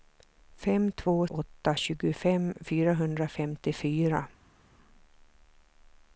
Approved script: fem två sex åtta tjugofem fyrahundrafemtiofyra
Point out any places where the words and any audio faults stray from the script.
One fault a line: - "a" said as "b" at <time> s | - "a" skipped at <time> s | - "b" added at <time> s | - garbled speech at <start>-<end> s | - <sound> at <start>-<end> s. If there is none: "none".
- "sex" skipped at 1.3 s